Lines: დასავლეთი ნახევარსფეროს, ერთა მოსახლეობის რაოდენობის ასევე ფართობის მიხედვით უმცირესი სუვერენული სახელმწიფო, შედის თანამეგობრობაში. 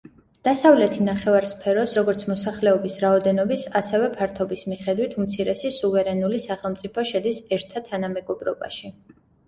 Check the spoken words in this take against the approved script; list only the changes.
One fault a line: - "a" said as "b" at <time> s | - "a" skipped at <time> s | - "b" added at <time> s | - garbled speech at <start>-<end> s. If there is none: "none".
- "ერთა" said as "როგორც" at 2.0 s
- "ერთა" added at 7.6 s